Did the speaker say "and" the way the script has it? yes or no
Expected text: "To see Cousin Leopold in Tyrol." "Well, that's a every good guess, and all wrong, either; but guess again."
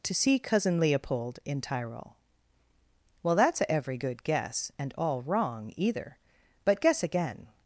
yes